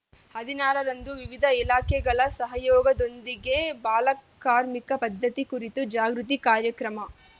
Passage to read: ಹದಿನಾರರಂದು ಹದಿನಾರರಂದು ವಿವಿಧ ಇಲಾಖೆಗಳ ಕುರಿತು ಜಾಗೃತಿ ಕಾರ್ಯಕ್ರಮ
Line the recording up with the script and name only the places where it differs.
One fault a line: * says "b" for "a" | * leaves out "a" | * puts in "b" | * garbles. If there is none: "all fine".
* leaves out "ಹದಿನಾರರಂದು"
* puts in "ಸಹಯೋಗದೊಂದಿಗೆ ಬಾಲಕಾರ್ಮಿಕ ಪದ್ಧತಿ"